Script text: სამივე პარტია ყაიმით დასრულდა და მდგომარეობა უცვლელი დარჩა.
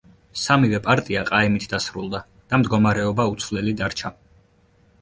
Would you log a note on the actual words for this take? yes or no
no